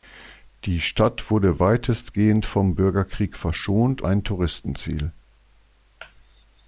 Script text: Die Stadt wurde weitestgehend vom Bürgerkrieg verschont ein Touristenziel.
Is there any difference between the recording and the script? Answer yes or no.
no